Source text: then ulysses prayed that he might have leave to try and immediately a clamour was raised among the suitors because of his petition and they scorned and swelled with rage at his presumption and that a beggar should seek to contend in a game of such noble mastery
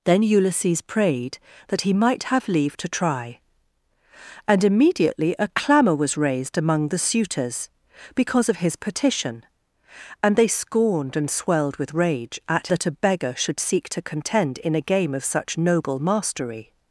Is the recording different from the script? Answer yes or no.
yes